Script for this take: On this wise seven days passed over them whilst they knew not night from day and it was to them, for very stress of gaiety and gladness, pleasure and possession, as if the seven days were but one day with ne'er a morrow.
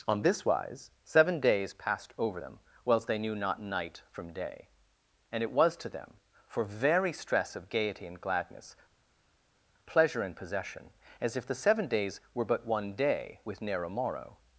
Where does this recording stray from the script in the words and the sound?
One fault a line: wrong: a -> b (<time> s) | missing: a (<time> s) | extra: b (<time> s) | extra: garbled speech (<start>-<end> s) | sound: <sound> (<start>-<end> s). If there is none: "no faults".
no faults